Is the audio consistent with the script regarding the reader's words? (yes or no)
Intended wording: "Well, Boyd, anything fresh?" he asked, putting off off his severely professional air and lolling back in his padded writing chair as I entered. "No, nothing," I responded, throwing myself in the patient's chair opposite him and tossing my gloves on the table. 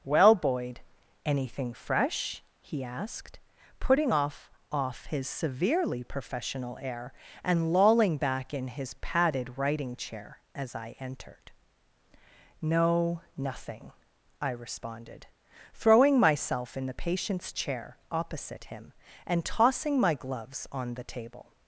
yes